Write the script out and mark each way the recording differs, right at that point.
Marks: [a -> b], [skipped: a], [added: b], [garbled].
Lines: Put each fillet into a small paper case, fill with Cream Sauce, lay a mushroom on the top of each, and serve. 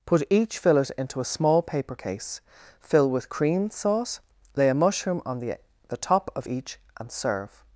Put each fillet into a small paper case, fill with Cream Sauce, lay a mushroom on the [added: the] top of each, and serve.